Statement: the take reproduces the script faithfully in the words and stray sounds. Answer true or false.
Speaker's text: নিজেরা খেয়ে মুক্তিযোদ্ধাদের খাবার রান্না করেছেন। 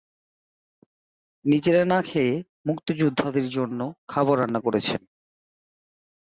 false